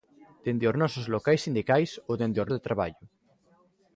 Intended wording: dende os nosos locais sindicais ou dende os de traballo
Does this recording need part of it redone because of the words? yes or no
no